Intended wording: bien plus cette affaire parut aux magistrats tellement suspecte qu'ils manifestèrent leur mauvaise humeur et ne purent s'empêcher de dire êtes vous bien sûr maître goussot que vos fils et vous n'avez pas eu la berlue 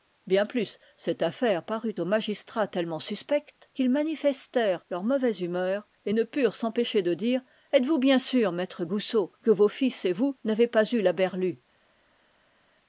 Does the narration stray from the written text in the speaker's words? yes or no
no